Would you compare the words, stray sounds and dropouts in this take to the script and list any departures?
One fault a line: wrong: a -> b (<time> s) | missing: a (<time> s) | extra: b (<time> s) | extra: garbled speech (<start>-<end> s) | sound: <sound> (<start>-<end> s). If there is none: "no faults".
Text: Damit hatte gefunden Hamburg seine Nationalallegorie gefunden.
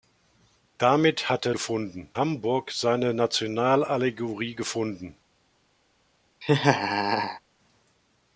sound: laugh (6.4-7.4 s)